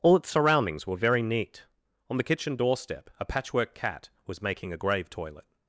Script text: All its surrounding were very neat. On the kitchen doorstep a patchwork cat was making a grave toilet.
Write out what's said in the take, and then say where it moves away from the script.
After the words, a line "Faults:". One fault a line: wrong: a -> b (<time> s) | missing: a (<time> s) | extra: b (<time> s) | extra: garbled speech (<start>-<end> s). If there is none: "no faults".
All its surroundings were very neat. On the kitchen doorstep a patchwork cat was making a grave toilet.
Faults:
wrong: surrounding -> surroundings (0.3 s)